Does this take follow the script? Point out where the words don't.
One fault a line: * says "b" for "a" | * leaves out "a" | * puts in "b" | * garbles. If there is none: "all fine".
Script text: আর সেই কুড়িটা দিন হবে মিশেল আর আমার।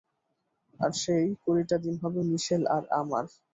all fine